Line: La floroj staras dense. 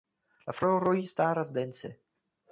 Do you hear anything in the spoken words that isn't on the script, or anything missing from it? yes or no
no